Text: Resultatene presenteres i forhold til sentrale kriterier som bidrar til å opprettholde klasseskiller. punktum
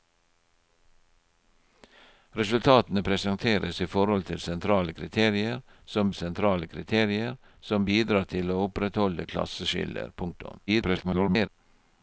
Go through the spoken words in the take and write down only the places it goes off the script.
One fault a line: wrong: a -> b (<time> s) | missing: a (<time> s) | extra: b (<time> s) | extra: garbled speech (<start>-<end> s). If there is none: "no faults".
extra: sentrale kriterier som (6.1 s)
extra: garbled speech (10.7-11.5 s)